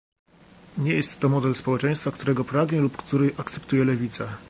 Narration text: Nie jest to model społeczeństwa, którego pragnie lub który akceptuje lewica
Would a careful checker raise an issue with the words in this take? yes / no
no